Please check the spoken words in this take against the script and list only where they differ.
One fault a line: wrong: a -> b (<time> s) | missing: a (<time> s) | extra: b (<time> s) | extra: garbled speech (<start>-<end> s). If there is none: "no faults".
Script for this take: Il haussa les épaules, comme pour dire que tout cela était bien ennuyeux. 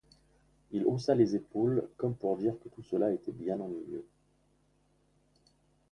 no faults